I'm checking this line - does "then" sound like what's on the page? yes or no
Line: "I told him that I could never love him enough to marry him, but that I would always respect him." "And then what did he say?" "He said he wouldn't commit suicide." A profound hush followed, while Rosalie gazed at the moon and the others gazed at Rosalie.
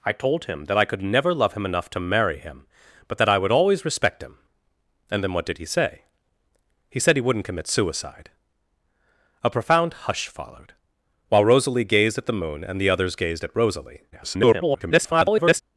yes